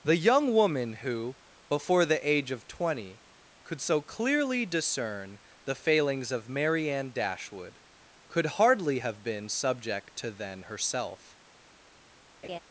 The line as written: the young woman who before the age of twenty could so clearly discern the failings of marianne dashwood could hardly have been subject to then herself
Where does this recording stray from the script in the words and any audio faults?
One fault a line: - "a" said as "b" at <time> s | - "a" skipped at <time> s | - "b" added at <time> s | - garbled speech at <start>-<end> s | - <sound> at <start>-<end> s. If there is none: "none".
- laugh at 12.4-12.6 s